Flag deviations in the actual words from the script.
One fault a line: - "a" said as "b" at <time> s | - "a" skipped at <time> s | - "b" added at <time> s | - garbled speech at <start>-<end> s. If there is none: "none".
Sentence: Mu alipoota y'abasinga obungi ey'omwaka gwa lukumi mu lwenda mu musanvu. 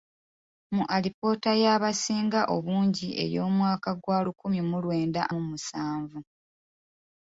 none